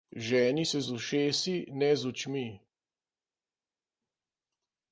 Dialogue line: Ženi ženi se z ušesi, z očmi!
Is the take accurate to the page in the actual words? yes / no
no